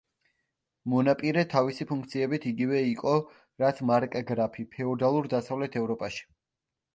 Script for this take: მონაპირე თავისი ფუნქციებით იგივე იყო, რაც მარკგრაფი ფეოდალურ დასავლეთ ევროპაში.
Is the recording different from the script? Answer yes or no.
no